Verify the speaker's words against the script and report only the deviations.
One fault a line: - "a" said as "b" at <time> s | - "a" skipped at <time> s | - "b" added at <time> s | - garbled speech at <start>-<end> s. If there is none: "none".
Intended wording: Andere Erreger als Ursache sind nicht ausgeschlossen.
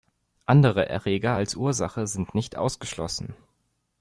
none